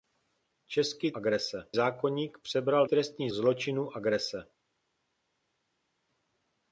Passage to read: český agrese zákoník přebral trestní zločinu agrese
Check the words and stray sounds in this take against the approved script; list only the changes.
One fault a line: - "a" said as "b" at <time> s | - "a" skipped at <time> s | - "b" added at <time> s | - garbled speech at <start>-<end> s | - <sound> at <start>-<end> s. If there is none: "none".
none